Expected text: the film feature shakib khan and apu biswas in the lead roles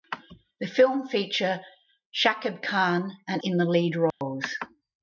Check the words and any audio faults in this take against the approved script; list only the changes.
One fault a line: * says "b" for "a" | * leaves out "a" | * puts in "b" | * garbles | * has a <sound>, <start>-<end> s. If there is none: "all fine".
* leaves out "apu biswas"
* has a dropout, 4.1-4.2 s